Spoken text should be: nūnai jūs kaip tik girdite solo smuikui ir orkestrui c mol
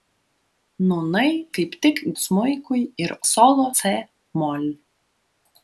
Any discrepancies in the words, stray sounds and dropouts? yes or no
yes